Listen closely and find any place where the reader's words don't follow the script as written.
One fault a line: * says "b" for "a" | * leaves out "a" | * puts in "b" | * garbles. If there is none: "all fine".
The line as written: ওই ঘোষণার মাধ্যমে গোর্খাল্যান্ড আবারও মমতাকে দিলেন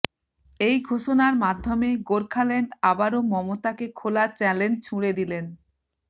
* says "এই" for "ওই"
* puts in "খোলা চ্যালেঞ্জ ছুড়ে"